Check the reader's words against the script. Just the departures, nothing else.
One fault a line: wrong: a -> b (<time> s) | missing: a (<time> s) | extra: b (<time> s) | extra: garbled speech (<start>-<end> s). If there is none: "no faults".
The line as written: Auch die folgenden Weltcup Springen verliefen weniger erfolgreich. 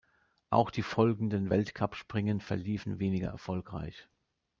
no faults